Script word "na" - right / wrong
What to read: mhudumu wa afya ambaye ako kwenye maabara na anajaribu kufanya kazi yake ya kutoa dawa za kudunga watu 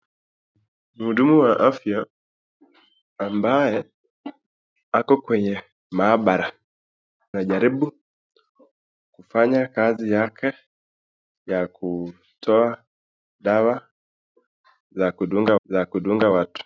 wrong